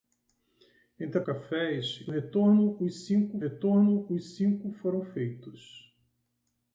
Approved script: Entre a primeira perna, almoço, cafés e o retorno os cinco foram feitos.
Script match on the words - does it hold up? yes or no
no